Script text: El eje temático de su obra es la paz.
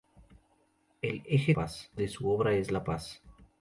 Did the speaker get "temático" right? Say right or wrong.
wrong